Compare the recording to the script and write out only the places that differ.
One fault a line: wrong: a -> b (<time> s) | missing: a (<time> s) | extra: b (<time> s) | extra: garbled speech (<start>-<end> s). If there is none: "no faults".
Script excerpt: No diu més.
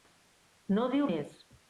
no faults